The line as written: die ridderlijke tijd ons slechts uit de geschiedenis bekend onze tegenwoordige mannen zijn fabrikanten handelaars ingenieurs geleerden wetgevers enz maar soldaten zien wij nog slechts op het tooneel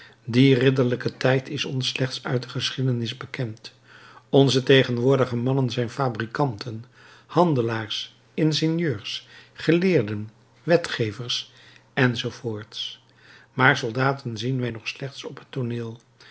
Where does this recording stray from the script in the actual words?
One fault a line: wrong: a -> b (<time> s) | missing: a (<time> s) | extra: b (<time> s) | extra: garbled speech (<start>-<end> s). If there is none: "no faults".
extra: is (1.5 s)